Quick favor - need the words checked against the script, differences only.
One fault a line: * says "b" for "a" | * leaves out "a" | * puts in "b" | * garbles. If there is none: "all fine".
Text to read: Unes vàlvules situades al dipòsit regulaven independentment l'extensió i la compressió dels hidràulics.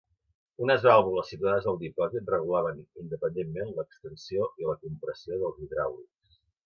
all fine